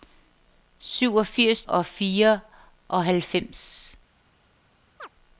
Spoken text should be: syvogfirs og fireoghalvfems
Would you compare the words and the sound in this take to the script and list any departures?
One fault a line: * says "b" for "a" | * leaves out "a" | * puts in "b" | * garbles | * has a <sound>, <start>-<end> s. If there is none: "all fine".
* has a chirp, 5.0-5.1 s